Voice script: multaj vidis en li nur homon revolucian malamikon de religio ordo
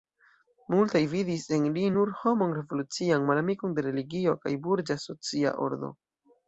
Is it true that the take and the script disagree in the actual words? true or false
true